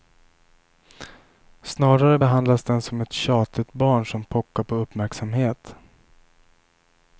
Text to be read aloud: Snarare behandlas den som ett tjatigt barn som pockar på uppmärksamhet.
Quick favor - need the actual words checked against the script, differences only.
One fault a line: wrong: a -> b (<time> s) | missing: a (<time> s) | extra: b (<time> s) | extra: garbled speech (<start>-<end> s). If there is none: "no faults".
no faults